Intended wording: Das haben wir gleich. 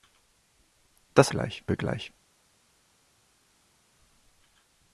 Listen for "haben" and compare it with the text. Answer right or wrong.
wrong